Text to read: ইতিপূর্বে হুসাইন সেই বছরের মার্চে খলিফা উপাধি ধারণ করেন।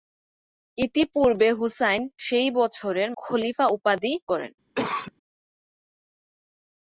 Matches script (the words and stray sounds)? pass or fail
fail